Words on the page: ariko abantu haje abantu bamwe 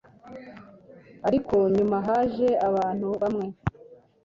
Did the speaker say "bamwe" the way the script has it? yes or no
yes